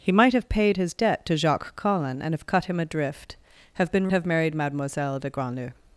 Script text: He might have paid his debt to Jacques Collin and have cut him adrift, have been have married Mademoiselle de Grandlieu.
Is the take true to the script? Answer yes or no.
yes